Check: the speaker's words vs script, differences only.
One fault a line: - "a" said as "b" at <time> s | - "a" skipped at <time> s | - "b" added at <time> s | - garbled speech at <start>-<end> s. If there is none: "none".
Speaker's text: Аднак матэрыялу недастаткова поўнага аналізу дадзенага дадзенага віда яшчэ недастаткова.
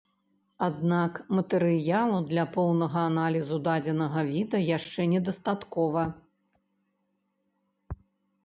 - "недастаткова" said as "для" at 2.3 s
- "дадзенага" skipped at 4.2 s